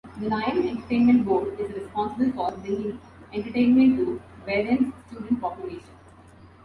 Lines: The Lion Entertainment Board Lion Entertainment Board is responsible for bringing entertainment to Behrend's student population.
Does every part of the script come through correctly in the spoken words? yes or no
no